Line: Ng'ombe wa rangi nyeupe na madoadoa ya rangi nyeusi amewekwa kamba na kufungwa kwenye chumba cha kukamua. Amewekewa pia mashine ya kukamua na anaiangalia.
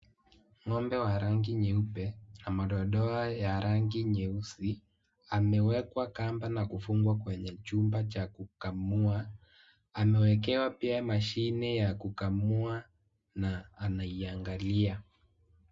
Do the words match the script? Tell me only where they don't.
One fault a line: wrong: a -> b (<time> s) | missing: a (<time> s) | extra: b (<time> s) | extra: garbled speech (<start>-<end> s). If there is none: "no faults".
no faults